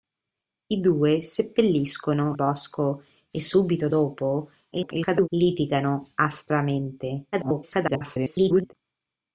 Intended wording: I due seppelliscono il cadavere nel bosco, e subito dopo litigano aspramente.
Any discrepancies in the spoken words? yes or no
yes